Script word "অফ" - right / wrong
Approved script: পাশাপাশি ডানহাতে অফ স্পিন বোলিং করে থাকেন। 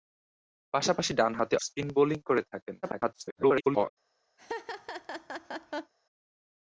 wrong